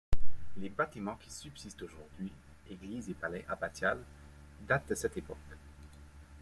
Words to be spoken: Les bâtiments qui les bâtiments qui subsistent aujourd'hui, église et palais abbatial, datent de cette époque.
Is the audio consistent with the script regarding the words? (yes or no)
no